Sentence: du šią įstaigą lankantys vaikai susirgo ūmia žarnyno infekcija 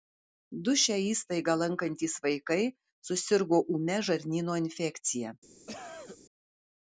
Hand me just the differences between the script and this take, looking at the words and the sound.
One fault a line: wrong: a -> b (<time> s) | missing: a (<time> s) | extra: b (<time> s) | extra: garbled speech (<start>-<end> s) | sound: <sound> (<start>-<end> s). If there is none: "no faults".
sound: cough (5.7-6.2 s)